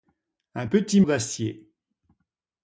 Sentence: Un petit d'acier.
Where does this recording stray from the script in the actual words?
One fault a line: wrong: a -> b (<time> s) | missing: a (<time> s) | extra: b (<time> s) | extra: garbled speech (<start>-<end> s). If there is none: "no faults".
no faults